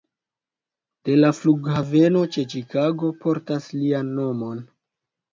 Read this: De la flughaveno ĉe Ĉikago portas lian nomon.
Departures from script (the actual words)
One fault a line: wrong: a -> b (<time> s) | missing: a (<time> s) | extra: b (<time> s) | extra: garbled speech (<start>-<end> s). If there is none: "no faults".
no faults